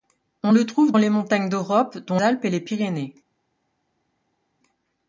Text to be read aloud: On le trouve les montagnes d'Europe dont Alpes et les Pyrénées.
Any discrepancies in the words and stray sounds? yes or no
no